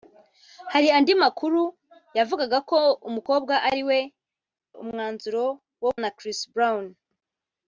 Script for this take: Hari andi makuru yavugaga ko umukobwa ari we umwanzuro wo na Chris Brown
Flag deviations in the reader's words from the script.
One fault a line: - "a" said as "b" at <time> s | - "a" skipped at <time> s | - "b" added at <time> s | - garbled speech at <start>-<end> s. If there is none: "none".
none